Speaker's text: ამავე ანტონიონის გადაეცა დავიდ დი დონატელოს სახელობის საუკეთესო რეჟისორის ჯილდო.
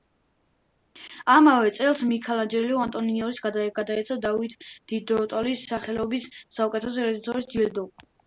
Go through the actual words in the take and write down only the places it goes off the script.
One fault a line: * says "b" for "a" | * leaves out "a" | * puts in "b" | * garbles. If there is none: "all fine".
* puts in "წელს მიქელანჯელო"